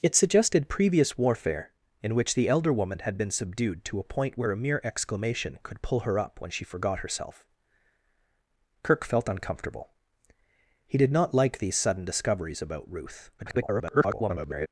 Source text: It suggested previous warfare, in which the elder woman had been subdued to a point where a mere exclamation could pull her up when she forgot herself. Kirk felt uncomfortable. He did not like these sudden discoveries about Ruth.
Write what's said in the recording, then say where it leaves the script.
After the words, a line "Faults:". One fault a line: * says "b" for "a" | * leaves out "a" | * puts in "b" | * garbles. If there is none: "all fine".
It suggested previous warfare, in which the elder woman had been subdued to a point where a mere exclamation could pull her up when she forgot herself. Kirk felt uncomfortable. He did not like these sudden discoveries about Ruth. [garbled]
Faults:
* garbles